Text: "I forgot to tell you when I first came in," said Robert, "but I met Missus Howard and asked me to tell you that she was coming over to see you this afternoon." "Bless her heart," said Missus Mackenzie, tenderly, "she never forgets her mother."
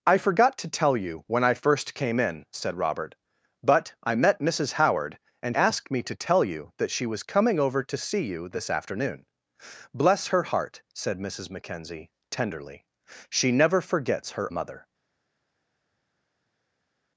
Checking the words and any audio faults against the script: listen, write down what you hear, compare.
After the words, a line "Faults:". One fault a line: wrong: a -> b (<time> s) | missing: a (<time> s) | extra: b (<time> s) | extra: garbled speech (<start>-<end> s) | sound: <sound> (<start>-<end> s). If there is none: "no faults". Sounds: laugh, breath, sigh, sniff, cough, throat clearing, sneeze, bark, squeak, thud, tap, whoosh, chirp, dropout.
"I forgot to tell you when I first came in," said Robert, "but I met Missus Howard and asked me to tell you that she was coming over to see you this afternoon." "Bless her heart," said Missus Mackenzie, tenderly, "she never forgets her mother."
Faults:
no faults